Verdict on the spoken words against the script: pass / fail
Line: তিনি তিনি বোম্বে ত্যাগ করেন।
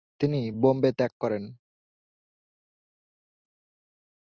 fail